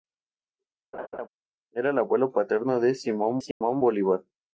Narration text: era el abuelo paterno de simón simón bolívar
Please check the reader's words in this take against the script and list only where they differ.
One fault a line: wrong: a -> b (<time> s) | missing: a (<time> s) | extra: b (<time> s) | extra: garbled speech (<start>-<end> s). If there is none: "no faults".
no faults